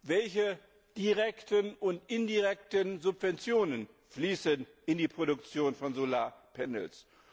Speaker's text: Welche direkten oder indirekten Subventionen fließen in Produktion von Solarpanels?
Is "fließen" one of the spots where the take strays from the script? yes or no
no